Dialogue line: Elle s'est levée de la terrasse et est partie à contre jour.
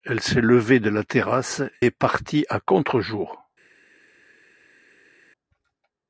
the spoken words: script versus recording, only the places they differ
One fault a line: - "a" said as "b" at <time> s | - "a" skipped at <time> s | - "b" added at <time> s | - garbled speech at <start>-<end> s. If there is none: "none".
- "et" skipped at 1.6 s